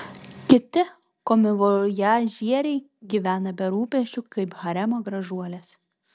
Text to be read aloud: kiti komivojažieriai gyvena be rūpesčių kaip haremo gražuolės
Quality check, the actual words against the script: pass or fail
pass